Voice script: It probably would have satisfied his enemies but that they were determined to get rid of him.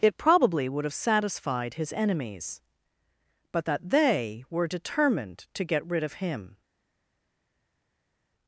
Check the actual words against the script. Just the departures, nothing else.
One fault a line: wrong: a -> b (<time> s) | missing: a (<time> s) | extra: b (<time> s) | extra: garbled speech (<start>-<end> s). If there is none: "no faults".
no faults